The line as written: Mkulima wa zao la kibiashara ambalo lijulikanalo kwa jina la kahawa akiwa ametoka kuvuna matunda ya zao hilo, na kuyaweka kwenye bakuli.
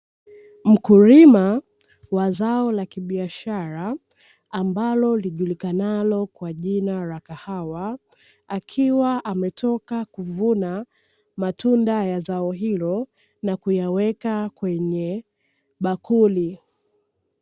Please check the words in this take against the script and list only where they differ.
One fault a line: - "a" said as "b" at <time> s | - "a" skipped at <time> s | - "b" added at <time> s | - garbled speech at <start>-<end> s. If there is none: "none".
none